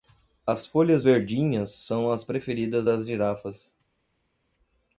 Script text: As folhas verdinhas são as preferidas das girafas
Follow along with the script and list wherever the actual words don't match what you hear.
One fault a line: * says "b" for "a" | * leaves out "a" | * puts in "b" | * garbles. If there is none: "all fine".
all fine